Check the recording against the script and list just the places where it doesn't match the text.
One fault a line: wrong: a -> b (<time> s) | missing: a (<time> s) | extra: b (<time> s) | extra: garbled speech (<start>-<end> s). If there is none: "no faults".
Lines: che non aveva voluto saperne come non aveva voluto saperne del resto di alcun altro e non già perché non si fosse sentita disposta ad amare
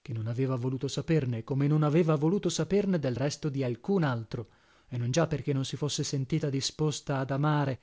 no faults